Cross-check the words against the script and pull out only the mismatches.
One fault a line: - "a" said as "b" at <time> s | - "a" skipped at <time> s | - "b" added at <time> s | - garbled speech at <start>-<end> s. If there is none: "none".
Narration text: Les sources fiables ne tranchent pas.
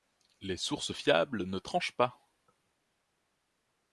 none